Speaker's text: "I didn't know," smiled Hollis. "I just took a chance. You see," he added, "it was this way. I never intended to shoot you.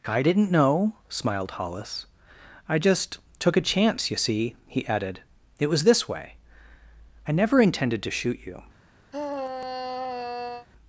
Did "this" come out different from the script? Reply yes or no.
no